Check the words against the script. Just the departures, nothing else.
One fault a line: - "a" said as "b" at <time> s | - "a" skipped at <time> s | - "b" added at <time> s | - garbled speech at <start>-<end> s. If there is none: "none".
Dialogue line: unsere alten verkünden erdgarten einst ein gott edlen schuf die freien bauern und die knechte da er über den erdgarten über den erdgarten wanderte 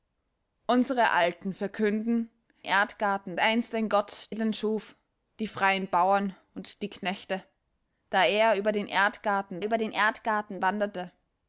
none